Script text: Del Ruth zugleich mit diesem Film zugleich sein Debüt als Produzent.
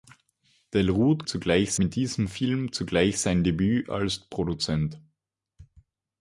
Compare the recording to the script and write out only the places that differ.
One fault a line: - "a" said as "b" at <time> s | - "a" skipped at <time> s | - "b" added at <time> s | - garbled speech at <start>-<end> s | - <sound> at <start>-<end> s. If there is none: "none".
none